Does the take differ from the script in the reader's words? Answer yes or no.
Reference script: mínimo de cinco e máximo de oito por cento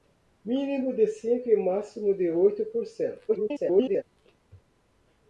yes